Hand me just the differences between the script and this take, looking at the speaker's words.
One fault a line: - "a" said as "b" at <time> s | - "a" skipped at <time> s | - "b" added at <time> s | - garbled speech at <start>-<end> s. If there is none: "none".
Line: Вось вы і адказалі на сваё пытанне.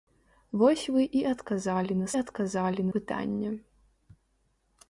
- "сваё" said as "адказалі" at 2.2 s